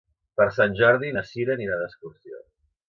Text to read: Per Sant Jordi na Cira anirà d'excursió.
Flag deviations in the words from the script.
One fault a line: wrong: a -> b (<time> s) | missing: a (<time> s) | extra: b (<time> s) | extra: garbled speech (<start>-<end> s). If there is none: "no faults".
no faults